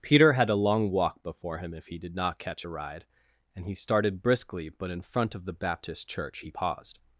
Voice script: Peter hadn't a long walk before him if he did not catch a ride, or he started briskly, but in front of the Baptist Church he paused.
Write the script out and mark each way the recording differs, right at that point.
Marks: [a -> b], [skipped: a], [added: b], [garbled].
Peter [hadn't -> had] a long walk before him if he did not catch a ride, [or -> and] he started briskly, but in front of the Baptist Church he paused.